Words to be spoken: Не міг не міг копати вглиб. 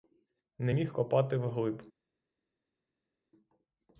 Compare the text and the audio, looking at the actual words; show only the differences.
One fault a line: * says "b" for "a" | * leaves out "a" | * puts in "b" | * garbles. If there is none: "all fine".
* leaves out "не міг"